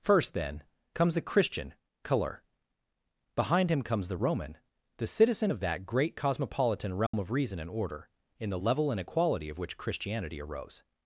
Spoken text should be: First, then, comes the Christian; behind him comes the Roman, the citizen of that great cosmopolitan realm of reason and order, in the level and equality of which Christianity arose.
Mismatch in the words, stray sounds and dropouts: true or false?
true